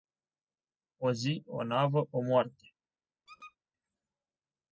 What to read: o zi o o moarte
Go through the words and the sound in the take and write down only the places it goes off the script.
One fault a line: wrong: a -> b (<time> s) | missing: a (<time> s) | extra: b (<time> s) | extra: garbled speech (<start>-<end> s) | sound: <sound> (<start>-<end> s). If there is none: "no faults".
extra: navă (1.6 s)
sound: squeak (3.3-3.6 s)